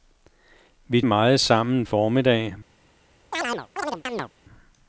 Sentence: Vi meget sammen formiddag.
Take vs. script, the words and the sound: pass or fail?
fail